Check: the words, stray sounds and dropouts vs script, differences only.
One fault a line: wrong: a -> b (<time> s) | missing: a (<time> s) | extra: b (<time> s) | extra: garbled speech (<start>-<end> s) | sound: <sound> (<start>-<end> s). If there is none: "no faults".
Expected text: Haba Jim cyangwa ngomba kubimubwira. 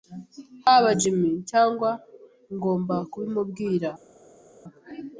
no faults